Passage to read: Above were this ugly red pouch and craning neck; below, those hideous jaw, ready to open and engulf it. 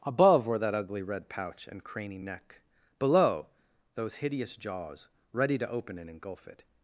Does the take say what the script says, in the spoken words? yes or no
no